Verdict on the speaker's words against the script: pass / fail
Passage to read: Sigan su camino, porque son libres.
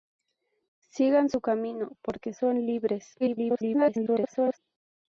fail